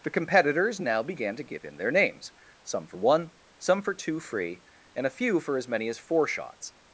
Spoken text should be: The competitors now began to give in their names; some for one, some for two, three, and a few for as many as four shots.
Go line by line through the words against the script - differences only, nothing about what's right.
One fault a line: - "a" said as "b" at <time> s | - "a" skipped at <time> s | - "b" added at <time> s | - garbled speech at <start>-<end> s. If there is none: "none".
- "three" said as "free" at 4.2 s